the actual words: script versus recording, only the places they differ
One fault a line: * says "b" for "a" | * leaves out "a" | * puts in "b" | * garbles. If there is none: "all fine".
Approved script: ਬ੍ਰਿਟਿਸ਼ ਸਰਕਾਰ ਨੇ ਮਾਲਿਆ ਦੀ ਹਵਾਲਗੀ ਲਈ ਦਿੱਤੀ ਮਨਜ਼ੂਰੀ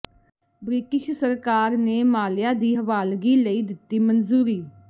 all fine